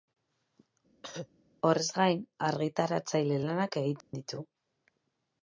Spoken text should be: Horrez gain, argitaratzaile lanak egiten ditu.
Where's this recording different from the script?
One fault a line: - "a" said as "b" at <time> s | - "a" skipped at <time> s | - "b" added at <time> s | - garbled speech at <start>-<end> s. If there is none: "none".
none